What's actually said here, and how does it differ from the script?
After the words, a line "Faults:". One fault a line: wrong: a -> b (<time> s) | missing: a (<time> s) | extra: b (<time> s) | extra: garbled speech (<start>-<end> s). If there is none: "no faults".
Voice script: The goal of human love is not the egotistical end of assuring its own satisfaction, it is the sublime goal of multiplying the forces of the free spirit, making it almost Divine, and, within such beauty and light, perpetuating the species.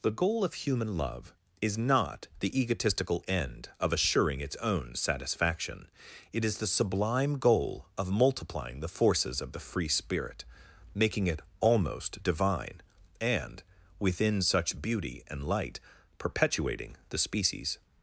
The goal of human love is not the egotistical end of assuring its own satisfaction, it is the sublime goal of multiplying the forces of the free spirit, making it almost Divine, and, within such beauty and light, perpetuating the species.
Faults:
no faults